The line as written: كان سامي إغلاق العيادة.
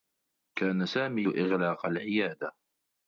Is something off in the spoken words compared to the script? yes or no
no